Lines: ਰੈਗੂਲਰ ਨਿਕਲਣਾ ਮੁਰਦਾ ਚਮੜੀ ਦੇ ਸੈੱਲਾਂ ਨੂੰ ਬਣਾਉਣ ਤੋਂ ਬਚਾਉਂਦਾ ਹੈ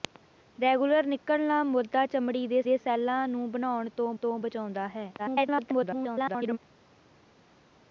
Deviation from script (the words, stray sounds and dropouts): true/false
true